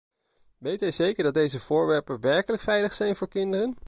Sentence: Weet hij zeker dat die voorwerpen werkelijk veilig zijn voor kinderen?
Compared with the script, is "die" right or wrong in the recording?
wrong